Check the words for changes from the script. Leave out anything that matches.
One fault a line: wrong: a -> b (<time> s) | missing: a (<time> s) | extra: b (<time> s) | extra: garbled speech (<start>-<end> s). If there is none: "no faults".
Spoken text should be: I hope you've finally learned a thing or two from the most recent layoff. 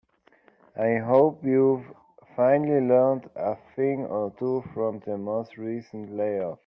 no faults